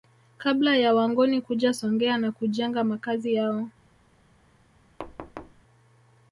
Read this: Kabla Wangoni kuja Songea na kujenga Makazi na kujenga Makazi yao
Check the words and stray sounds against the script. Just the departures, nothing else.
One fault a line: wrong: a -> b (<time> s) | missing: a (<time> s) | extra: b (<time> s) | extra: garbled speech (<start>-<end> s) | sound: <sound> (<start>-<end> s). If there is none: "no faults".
extra: ya (0.8 s)
missing: na kujenga Makazi (3.3 s)
sound: thud (5.0-5.6 s)